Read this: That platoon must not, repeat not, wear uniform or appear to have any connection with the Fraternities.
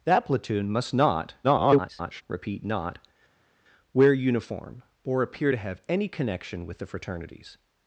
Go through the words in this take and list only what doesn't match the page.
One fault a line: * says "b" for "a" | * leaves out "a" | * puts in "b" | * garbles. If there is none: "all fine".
* garbles